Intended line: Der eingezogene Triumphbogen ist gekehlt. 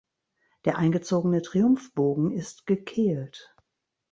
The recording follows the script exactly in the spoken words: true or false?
true